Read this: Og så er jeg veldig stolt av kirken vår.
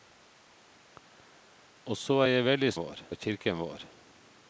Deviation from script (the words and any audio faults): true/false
true